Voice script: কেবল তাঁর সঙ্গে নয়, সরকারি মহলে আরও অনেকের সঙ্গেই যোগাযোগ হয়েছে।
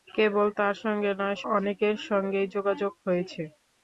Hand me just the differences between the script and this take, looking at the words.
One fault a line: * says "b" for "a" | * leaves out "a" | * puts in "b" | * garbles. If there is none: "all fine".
* leaves out "সরকারি মহলে আরও"